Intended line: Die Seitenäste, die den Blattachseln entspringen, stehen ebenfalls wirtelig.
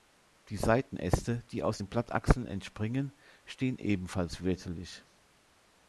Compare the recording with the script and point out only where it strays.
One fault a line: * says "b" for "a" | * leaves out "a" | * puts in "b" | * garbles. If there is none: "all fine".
* puts in "aus"